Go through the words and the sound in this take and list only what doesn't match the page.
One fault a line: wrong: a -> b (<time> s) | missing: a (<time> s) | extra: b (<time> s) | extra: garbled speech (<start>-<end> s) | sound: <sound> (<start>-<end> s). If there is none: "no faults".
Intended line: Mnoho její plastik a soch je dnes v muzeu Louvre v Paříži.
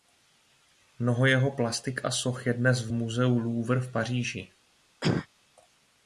wrong: její -> jeho (1.2 s)
sound: cough (5.0-5.3 s)